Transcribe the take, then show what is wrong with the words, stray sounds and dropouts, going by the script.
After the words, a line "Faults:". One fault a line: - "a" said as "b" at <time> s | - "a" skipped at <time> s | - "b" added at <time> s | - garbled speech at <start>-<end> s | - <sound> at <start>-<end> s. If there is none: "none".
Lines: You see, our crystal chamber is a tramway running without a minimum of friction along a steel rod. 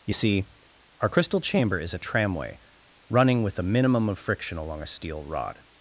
You see, our crystal chamber is a tramway running with a minimum of friction along a steel rod.
Faults:
- "without" said as "with" at 3.4 s